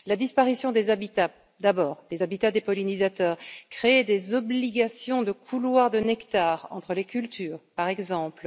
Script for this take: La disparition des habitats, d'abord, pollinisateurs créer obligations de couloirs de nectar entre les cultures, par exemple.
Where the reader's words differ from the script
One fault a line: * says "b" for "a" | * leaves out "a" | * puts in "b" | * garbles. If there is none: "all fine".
* puts in "les habitats des"
* puts in "des"